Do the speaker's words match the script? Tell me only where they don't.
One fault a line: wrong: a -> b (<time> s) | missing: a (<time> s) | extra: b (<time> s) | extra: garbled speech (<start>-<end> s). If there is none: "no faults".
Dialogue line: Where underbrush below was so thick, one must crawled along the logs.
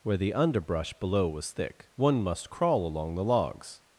extra: the (0.2 s)
missing: so (1.5 s)
wrong: crawled -> crawl (2.5 s)